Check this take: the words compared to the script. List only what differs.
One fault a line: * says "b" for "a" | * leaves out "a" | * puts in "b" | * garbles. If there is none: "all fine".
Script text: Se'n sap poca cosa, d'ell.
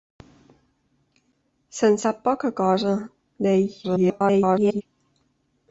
* garbles